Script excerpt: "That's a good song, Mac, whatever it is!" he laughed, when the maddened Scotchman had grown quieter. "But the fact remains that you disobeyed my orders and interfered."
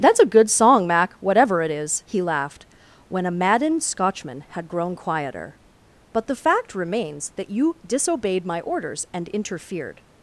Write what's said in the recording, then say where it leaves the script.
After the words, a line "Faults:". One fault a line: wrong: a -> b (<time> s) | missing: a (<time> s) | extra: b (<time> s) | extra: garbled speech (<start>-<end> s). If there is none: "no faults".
"That's a good song, Mac, whatever it is!" he laughed, when a maddened Scotchman had grown quieter. "But the fact remains that you disobeyed my orders and interfered."
Faults:
wrong: the -> a (3.2 s)